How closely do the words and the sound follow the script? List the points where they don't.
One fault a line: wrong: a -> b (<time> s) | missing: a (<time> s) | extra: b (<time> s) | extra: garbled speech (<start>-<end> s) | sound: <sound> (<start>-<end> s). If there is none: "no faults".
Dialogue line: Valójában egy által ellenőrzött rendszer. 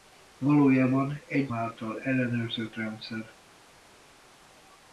no faults